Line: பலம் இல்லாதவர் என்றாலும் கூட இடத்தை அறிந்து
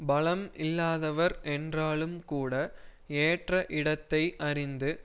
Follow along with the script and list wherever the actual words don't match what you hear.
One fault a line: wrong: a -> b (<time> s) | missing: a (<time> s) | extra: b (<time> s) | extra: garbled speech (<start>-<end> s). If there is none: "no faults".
extra: ஏற்ற (3.2 s)